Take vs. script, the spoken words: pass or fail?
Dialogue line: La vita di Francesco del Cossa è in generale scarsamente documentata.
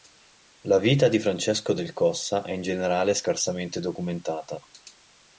pass